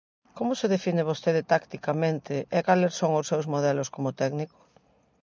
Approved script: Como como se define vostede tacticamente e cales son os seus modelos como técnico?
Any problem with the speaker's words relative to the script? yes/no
yes